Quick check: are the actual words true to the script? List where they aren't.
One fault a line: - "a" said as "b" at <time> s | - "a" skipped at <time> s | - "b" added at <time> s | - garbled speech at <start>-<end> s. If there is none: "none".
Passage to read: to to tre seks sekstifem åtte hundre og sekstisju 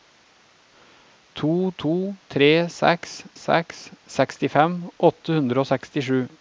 - "seks" added at 3.3 s